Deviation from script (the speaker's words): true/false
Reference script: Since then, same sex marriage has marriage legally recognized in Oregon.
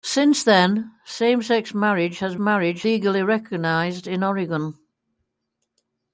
false